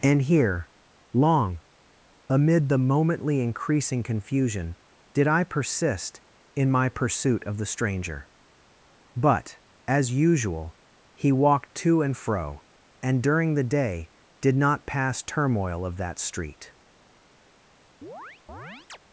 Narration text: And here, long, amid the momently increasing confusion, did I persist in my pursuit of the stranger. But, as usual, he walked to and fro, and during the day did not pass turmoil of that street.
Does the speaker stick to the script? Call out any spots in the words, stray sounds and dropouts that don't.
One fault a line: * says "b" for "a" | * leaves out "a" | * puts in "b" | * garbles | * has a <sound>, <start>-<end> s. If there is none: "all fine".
* has a chirp, 18.0-19.0 s